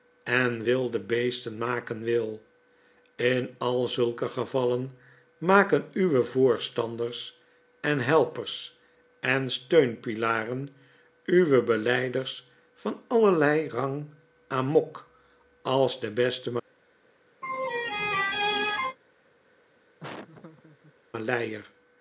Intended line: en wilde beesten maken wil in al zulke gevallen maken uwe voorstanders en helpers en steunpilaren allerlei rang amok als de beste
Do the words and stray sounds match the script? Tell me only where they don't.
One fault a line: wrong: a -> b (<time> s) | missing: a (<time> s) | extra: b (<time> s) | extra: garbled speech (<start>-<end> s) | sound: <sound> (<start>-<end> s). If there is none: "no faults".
extra: uwe belyders van (11.3 s)
sound: laugh (17.4-19.0 s)
sound: laugh (20.0-20.9 s)